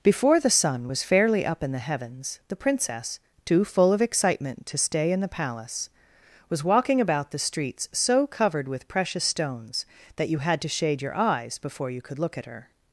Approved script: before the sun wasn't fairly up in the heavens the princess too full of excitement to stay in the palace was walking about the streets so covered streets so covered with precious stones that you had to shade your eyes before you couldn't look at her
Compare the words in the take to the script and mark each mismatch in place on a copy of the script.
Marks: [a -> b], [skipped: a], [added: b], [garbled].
before the sun [wasn't -> was] fairly up in the heavens the princess too full of excitement to stay in the palace was walking about the streets so covered [skipped: streets so covered] with precious stones that you had to shade your eyes before you [couldn't -> could] look at her